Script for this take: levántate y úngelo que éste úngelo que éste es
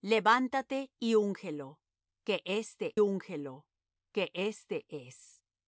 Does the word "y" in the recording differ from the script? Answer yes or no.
no